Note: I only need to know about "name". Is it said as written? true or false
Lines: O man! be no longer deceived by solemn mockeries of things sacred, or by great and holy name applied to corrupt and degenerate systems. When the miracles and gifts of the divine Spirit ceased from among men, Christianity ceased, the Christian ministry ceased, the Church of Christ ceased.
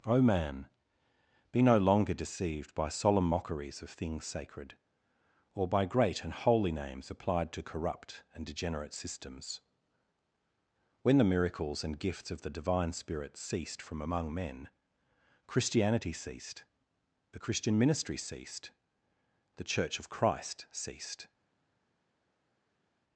false